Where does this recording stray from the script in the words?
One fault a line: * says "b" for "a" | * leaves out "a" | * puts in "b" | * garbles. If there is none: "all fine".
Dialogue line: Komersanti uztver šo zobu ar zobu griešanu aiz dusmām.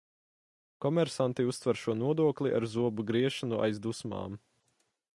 * says "nodokli" for "zobu"